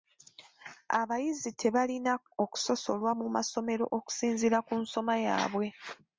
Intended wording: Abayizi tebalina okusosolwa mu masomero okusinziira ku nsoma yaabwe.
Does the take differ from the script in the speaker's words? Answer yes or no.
no